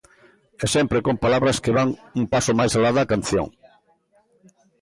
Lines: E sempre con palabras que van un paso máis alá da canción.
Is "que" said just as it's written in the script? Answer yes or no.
yes